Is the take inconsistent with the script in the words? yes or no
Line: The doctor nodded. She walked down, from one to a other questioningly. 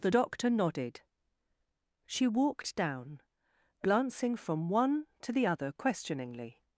yes